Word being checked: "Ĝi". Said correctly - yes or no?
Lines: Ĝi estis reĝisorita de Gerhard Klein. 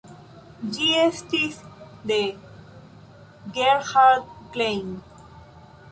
yes